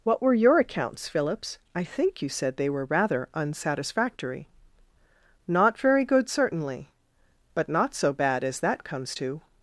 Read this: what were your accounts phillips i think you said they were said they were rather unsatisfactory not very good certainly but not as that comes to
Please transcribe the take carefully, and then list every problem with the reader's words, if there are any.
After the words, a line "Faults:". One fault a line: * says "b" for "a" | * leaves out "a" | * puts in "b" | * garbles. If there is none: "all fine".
what were your accounts phillips i think you said they were rather unsatisfactory not very good certainly but not so bad as that comes to
Faults:
* leaves out "said they were"
* puts in "so bad"